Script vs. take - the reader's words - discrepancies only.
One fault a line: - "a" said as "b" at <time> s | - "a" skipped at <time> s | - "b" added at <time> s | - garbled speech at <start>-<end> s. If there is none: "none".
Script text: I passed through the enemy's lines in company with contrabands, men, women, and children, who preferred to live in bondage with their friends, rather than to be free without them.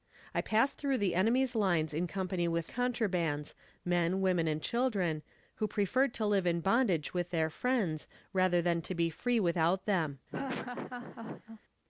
none